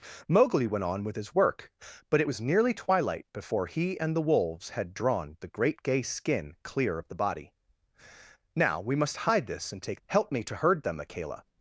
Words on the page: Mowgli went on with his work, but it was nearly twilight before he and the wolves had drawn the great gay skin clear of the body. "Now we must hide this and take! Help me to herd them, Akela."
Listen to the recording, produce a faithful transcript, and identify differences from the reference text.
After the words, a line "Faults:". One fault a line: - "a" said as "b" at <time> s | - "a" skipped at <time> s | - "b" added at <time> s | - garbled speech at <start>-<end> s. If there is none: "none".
Mowgli went on with his work, but it was nearly twilight before he and the wolves had drawn the great gay skin clear of the body. "Now we must hide this and take! Help me to herd them, Akela."
Faults:
none